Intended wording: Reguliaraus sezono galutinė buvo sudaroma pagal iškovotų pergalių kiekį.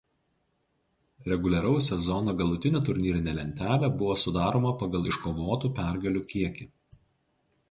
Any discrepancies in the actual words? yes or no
yes